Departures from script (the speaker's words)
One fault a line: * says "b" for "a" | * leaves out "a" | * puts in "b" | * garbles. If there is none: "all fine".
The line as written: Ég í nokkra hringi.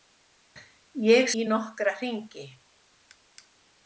all fine